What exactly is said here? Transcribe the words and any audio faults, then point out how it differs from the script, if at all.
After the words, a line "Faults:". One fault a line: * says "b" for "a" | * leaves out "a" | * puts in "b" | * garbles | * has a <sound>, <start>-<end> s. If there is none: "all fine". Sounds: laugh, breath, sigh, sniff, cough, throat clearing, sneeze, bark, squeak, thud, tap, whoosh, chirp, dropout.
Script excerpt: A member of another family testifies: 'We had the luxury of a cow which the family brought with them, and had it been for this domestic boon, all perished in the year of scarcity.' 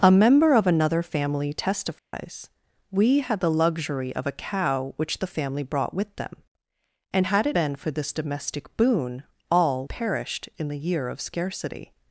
A member of another family testifies: 'We had the luxury of a cow which the family brought with them, and had it been for this domestic boon, all perished in the year of scarcity.'
Faults:
* has a dropout, 2.0-2.1 s